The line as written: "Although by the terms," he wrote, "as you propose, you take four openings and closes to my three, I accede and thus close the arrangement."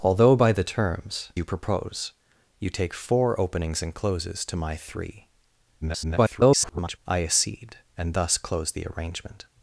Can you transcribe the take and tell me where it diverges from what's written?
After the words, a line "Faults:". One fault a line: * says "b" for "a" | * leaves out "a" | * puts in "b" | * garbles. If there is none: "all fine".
"Although by the terms," you propose, you take four openings and closes to my three, [garbled] I accede and thus close the arrangement."
Faults:
* leaves out "he wrote as"
* garbles